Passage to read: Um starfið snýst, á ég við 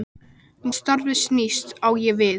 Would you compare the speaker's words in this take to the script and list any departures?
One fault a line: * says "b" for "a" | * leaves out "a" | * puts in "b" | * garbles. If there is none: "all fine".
all fine